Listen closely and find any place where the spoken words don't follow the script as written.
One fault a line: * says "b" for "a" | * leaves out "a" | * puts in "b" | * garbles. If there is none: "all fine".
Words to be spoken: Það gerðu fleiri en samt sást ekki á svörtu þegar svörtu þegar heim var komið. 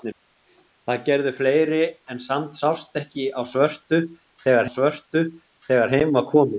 all fine